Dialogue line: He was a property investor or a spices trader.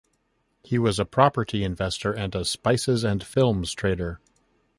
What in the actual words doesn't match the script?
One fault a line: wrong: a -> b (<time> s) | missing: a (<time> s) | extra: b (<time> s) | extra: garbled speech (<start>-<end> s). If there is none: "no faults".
wrong: or -> and (2.1 s)
extra: and films (3.0 s)